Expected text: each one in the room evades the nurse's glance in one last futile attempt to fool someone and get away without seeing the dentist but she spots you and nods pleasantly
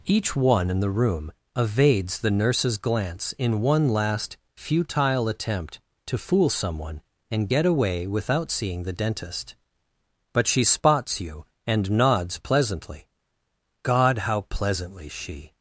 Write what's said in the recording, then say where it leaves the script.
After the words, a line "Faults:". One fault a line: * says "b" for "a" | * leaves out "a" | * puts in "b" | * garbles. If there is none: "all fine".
each one in the room evades the nurse's glance in one last futile attempt to fool someone and get away without seeing the dentist but she spots you and nods pleasantly god how pleasantly she
Faults:
* puts in "god how pleasantly she"